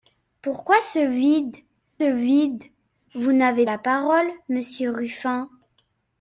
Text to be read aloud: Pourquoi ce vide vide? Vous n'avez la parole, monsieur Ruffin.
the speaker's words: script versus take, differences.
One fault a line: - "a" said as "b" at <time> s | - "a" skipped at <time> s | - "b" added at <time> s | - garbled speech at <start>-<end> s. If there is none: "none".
none